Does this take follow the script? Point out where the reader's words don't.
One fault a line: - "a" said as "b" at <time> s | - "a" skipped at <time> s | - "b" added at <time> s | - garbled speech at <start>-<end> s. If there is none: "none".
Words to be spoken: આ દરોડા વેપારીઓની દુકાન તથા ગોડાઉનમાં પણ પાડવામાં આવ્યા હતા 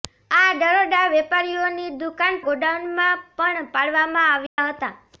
- "તથા" skipped at 2.4 s